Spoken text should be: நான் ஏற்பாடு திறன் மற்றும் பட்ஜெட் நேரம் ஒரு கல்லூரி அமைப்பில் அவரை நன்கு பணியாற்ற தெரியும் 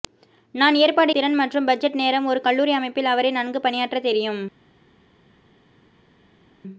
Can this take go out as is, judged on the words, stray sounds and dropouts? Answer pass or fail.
pass